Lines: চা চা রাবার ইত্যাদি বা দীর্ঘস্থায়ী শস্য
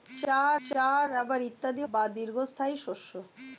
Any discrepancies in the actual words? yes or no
no